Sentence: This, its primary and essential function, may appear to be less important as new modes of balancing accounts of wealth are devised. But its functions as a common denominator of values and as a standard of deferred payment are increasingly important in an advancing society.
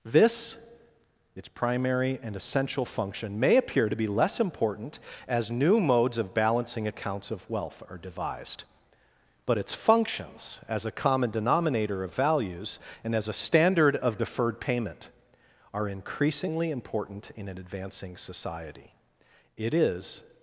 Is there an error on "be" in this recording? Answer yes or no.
no